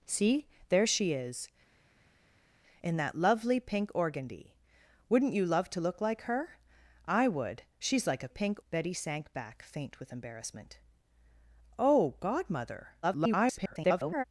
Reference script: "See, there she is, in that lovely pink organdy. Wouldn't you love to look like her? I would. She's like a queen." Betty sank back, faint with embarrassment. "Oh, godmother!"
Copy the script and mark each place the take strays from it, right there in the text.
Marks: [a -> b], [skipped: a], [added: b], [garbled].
"See, there she is, in that lovely pink organdy. Wouldn't you love to look like her? I would. She's like a [queen." -> pink] Betty sank back, faint with embarrassment. "Oh, godmother!" [garbled]